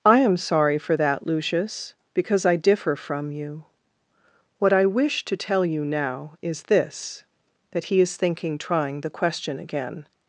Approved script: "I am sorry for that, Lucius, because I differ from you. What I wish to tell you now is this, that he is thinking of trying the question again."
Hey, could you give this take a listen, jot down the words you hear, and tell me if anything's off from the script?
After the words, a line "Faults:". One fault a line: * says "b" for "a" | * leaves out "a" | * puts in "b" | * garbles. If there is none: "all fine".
"I am sorry for that, Lucius, because I differ from you. What I wish to tell you now is this, that he is thinking trying the question again."
Faults:
* leaves out "of"